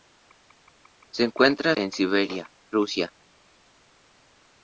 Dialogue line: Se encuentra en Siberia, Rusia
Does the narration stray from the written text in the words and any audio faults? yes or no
no